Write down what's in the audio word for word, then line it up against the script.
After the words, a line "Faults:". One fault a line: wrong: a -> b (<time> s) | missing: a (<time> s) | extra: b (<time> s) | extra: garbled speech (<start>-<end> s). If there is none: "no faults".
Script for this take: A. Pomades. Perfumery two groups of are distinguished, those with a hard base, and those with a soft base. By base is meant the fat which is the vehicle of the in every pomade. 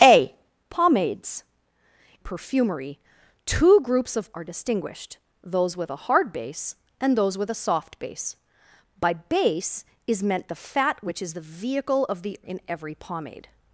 A. Pomades. Perfumery two groups of are distinguished, those with a hard base, and those with a soft base. By base is meant the fat which is the vehicle of the in every pomade.
Faults:
no faults